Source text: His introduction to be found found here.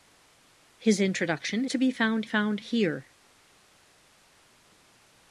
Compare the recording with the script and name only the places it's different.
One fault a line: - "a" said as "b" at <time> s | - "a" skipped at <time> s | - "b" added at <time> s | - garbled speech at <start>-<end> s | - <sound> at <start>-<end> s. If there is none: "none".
none